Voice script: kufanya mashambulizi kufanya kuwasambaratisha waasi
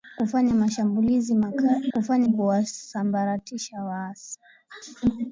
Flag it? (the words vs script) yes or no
no